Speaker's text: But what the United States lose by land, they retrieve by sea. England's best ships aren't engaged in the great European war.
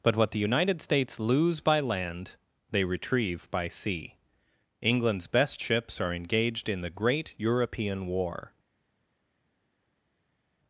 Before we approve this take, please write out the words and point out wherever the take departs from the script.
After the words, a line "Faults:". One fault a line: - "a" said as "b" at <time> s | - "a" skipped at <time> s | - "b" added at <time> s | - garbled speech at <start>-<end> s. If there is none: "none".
But what the United States lose by land, they retrieve by sea. England's best ships are engaged in the great European war.
Faults:
- "aren't" said as "are" at 6.0 s